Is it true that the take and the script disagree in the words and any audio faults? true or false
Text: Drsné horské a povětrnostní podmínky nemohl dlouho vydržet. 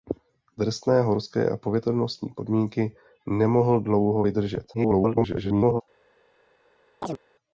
true